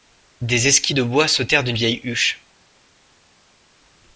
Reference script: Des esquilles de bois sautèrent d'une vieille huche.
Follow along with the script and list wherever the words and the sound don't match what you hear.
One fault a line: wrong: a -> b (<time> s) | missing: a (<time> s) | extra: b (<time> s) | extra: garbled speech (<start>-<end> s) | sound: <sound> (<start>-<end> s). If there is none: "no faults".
no faults